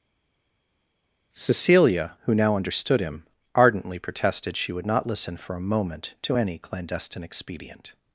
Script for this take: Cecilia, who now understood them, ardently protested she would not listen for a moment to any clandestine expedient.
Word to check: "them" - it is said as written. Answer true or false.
false